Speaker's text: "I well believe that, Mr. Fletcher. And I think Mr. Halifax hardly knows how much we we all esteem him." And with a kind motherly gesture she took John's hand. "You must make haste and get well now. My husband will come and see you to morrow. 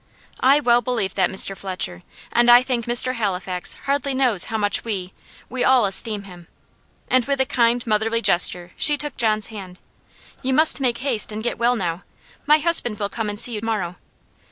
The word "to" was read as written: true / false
false